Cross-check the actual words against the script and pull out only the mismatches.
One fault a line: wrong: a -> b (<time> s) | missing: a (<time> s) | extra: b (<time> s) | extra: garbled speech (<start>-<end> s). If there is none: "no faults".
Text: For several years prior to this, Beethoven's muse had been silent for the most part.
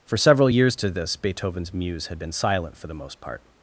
missing: prior (0.7 s)